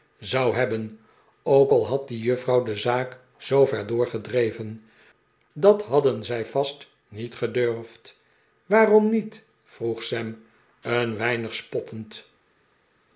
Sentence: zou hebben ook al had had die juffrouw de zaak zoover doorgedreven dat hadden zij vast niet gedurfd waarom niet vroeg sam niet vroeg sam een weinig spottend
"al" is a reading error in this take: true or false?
false